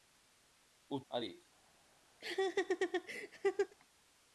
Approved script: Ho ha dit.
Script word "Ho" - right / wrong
right